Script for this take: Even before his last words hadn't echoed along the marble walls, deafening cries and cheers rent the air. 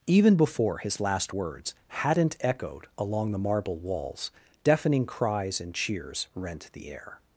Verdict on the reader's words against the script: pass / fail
pass